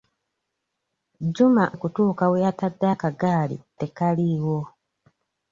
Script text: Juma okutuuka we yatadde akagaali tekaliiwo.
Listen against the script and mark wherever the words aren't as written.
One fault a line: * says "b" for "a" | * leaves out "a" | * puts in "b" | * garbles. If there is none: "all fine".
all fine